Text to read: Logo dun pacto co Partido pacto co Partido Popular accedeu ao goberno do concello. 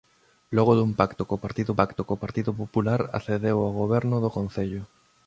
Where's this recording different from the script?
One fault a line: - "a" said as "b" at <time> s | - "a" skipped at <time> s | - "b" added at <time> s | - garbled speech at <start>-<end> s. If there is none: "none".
none